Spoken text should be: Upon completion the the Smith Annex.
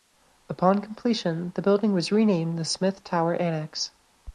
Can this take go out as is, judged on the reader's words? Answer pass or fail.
fail